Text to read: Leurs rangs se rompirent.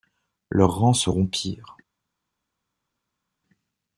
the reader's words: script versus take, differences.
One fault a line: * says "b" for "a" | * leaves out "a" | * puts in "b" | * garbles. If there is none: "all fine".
all fine